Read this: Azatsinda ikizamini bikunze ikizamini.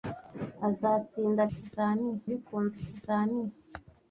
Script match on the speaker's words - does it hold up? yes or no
yes